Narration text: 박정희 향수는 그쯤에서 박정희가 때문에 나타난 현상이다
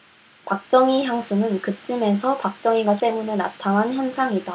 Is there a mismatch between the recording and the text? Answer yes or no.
no